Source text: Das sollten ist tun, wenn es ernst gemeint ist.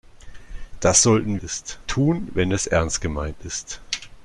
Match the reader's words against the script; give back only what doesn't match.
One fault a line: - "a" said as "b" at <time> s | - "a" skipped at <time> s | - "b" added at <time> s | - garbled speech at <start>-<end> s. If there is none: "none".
none